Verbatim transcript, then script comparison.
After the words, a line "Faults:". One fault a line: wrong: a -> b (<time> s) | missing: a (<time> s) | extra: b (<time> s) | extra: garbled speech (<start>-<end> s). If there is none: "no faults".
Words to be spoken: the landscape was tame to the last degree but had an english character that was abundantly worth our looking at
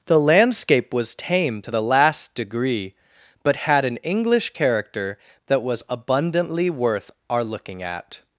the landscape was tame to the last degree but had an english character that was abundantly worth our looking at
Faults:
no faults